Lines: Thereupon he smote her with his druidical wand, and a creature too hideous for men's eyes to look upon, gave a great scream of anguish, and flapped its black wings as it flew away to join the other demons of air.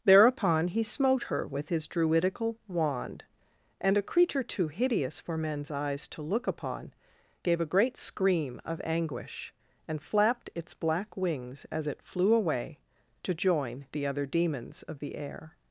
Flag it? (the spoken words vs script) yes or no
yes